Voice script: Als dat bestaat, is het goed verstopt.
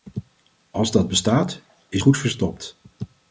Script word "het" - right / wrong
wrong